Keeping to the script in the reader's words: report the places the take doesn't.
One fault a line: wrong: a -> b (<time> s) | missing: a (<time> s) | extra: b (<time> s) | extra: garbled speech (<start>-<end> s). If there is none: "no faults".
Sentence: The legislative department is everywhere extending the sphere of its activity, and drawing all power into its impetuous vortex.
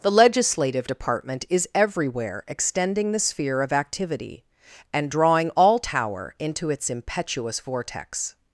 missing: its (3.7 s)
wrong: power -> tower (5.8 s)